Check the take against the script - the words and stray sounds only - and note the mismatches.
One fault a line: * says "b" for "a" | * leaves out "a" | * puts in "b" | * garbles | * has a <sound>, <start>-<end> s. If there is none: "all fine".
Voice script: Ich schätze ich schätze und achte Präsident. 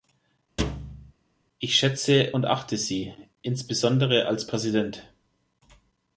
* has a thud, 0.6-1.1 s
* says "und achte Sie insbesondere als" for "ich schätze und achte"